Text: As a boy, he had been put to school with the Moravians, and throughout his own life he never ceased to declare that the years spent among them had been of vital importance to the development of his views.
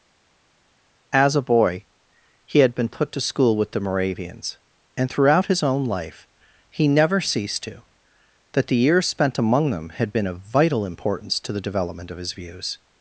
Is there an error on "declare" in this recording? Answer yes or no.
yes